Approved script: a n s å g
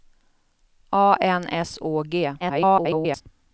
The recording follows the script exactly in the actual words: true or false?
false